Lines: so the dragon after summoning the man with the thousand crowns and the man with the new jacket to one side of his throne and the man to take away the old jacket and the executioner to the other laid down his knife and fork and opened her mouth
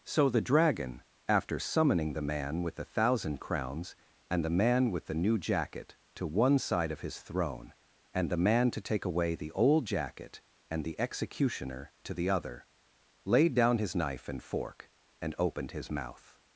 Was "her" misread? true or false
true